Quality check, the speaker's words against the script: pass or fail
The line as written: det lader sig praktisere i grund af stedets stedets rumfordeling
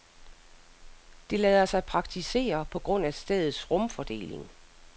fail